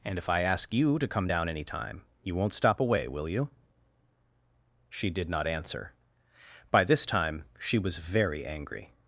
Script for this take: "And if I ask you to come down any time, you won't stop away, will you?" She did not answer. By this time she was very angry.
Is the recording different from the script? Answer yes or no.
no